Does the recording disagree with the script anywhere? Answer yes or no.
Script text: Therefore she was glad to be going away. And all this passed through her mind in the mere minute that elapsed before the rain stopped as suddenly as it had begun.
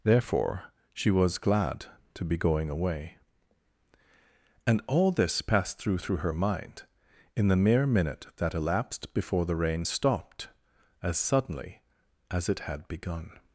yes